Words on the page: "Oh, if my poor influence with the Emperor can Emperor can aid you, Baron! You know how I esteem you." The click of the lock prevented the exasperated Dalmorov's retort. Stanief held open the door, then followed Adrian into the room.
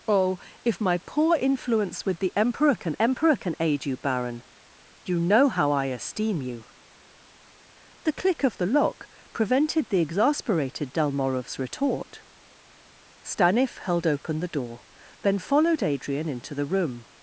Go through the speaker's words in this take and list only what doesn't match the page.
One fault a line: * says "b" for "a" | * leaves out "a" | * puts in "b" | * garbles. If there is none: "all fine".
all fine